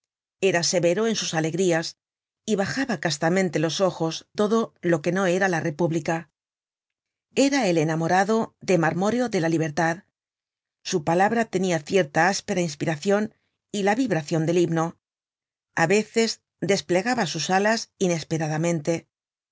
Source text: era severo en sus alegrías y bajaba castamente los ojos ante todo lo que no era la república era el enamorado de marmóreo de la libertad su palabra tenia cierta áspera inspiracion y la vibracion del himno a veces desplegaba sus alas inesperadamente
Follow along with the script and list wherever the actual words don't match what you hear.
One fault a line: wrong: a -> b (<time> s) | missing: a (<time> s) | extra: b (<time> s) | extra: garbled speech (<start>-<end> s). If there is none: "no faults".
missing: ante (4.3 s)